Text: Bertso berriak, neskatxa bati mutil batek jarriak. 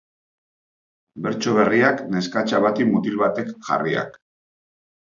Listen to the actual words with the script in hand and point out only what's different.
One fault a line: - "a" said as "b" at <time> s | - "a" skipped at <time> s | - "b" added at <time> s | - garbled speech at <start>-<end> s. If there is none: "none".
none